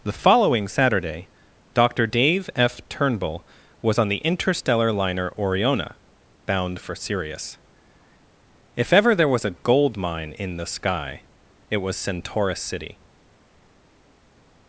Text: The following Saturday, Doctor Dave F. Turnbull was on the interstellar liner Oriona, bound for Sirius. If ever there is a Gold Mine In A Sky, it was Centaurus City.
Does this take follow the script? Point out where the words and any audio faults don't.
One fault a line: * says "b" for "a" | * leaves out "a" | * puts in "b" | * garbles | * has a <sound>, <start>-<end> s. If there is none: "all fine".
* says "was" for "is"
* says "The" for "A"